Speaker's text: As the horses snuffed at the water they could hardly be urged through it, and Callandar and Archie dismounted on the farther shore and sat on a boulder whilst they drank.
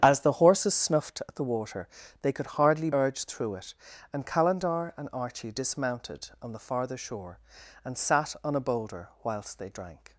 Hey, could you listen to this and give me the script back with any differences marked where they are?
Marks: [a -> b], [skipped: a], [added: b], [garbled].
As the horses snuffed at the water they could hardly [skipped: be] urged through it, and Callandar and Archie dismounted on the farther shore and sat on a boulder whilst they drank.